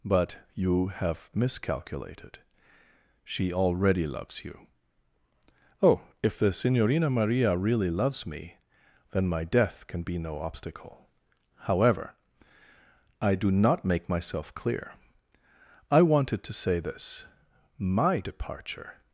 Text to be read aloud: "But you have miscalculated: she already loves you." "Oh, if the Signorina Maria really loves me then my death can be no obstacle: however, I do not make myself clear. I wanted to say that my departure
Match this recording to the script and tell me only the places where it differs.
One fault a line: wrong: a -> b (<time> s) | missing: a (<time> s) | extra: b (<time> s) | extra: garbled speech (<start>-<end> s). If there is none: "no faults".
wrong: that -> this (16.8 s)